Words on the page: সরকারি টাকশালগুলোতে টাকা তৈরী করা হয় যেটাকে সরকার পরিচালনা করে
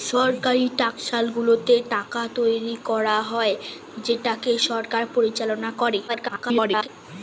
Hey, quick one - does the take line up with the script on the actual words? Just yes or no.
no